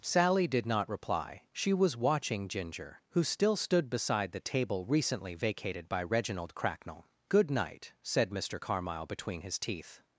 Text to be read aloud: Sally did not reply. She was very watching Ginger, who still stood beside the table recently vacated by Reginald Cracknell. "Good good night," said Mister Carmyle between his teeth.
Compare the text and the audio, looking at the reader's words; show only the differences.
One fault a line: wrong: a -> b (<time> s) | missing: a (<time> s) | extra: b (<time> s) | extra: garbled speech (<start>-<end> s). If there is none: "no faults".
missing: very (1.9 s)
missing: good (7.5 s)